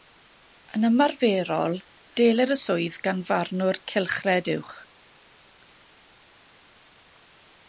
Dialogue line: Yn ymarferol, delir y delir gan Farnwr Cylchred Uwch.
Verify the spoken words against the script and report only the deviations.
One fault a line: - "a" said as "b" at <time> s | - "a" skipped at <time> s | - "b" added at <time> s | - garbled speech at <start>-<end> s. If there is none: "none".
- "delir" said as "swydd" at 2.6 s